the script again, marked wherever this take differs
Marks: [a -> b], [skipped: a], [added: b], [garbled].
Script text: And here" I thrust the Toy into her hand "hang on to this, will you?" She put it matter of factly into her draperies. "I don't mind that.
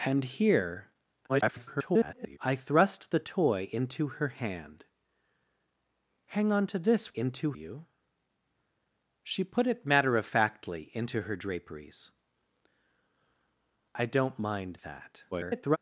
And here" [garbled] I thrust the Toy into her hand "hang on to this, [will -> into] you?" She put it matter of factly into her draperies. "I don't mind that. [garbled]